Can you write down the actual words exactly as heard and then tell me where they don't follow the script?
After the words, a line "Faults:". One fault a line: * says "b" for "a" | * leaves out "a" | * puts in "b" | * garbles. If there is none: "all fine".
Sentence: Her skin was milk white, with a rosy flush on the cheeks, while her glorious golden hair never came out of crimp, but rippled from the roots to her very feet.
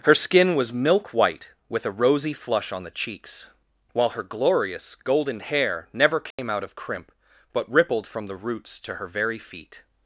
Her skin was milk white, with a rosy flush on the cheeks, while her glorious golden hair never came out of crimp, but rippled from the roots to her very feet.
Faults:
all fine